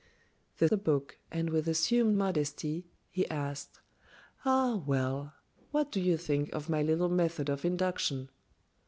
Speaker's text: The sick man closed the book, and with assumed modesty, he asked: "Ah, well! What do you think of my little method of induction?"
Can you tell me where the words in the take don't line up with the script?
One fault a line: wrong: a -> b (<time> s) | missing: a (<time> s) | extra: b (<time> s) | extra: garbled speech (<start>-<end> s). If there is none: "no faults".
missing: sick man closed (0.7 s)